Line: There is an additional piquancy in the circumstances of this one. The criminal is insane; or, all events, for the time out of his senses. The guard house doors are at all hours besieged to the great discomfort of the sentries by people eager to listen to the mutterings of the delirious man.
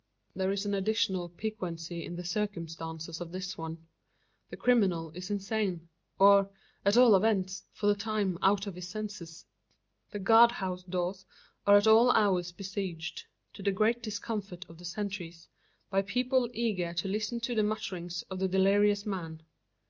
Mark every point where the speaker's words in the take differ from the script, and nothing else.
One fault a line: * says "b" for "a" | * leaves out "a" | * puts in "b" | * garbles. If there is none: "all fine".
* puts in "at"